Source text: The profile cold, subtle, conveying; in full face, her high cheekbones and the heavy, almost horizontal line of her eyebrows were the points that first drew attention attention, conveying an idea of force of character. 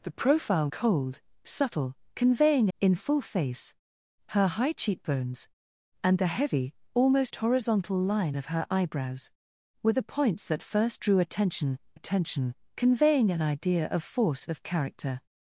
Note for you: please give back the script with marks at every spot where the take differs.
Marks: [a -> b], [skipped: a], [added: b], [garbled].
The profile cold, subtle, conveying; in full face, her high cheekbones and the heavy, almost horizontal line of her eyebrows were the points that first drew attention attention, conveying an idea of force of character.